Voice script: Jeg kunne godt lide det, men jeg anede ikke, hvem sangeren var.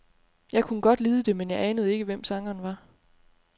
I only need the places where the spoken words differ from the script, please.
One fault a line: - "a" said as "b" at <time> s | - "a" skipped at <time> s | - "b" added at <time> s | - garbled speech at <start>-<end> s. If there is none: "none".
none